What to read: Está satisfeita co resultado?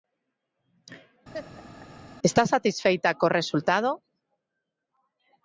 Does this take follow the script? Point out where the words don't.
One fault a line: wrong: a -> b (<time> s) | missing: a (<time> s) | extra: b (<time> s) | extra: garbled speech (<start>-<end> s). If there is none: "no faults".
no faults